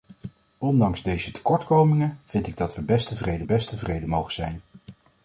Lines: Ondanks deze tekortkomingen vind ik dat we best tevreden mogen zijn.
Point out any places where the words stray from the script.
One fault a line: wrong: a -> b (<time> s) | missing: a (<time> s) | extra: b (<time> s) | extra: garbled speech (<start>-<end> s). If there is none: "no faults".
extra: best tevreden (3.4 s)